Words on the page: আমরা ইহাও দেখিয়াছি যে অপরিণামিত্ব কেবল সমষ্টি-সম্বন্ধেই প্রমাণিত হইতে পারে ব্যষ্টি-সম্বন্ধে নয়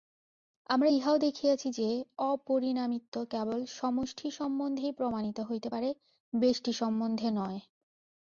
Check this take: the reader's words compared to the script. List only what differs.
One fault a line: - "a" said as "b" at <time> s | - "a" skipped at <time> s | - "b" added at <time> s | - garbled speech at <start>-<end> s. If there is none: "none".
none